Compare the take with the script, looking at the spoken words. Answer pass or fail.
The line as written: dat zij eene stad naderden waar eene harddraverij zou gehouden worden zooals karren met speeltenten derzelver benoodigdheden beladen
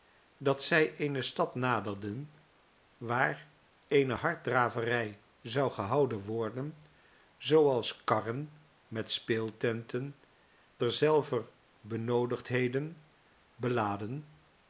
pass